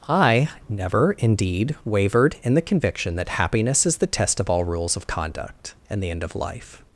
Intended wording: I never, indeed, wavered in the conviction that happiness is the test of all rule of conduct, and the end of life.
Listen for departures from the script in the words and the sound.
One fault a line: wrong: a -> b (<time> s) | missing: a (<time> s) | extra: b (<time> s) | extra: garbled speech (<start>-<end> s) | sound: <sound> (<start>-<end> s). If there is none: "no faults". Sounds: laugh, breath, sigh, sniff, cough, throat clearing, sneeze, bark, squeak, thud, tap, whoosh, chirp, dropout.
wrong: rule -> rules (4.6 s)